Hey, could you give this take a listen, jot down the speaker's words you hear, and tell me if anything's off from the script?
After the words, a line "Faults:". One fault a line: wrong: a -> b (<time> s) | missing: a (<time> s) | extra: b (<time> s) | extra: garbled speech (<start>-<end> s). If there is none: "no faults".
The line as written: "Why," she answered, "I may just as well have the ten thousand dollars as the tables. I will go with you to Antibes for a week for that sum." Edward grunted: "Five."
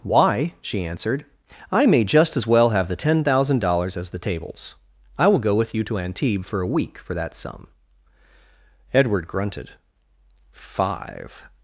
"Why," she answered, "I may just as well have the ten thousand dollars as the tables. I will go with you to Antibes for a week for that sum." Edward grunted: "Five."
Faults:
no faults